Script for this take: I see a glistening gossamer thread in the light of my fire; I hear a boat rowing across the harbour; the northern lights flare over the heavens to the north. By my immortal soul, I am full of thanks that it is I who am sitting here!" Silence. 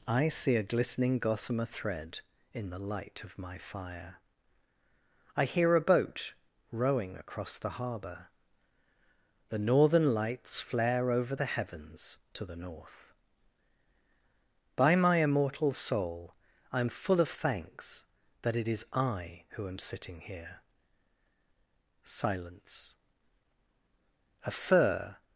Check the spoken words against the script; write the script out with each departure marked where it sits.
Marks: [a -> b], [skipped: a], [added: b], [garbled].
I see a glistening gossamer thread in the light of my fire; I hear a boat rowing across the harbour; the northern lights flare over the heavens to the north. By my immortal soul, I am full of thanks that it is I who am sitting here!" Silence. [added: A fir]